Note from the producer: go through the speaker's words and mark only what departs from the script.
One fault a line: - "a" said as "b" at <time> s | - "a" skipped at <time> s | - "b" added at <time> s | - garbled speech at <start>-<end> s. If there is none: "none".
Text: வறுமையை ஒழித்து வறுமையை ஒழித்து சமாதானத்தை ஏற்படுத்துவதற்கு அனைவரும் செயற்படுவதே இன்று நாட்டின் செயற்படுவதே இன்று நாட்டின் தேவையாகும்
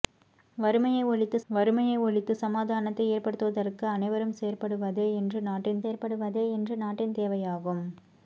none